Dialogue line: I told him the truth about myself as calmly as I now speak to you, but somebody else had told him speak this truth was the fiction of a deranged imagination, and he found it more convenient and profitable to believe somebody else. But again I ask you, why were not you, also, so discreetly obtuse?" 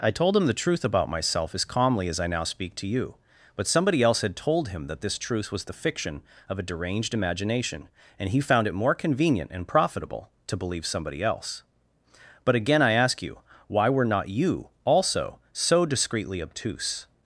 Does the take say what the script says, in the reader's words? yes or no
no